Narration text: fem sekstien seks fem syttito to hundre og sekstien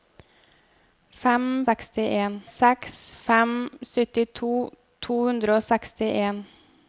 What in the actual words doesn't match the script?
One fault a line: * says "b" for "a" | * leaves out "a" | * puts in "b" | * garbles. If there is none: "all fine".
all fine